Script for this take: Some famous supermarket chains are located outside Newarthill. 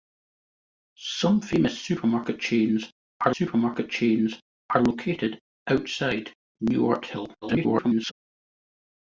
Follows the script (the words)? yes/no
no